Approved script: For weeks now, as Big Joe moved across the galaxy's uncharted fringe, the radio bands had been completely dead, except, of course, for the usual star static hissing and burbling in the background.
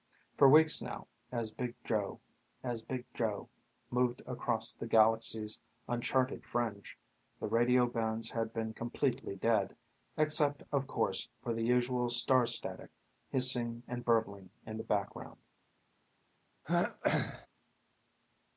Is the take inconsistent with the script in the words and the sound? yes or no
yes